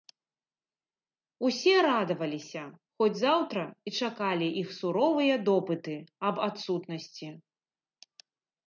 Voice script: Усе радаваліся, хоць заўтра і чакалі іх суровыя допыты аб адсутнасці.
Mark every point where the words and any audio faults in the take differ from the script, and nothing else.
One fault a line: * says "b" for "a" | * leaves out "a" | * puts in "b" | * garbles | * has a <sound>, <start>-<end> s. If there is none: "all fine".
all fine